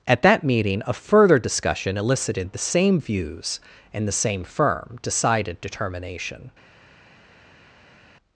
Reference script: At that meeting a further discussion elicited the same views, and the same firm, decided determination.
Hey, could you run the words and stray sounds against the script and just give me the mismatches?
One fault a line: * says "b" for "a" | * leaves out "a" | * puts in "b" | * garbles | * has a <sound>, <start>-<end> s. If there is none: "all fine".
all fine